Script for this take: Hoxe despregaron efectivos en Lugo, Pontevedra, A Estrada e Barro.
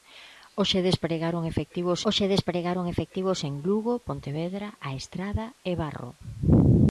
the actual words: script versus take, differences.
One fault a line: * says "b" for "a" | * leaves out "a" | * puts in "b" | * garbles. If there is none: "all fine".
* puts in "hoxe despregaron efectivos"